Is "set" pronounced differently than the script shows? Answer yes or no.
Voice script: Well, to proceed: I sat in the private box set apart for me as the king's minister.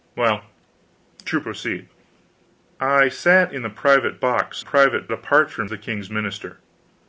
yes